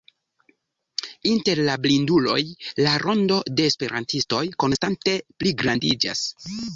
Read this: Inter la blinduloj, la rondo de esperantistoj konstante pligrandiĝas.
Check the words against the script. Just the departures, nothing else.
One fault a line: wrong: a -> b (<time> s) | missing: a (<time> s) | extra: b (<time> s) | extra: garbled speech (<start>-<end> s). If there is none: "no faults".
no faults